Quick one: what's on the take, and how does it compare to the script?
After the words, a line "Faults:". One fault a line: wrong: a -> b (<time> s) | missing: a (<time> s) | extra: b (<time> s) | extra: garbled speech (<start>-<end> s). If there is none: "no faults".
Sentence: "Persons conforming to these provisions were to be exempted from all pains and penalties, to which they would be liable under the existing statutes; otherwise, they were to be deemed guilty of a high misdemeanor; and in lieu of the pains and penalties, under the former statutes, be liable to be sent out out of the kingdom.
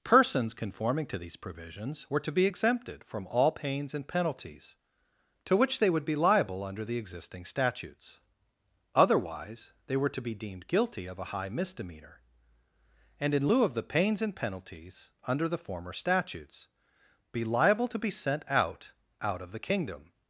"Persons conforming to these provisions were to be exempted from all pains and penalties, to which they would be liable under the existing statutes; otherwise, they were to be deemed guilty of a high misdemeanor; and in lieu of the pains and penalties, under the former statutes, be liable to be sent out out of the kingdom.
Faults:
no faults